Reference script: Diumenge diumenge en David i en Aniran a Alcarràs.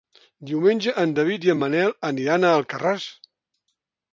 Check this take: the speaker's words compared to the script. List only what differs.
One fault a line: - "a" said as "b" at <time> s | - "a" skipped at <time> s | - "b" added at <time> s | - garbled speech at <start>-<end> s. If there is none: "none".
- "diumenge" skipped at 0.9 s
- "Manel" added at 1.6 s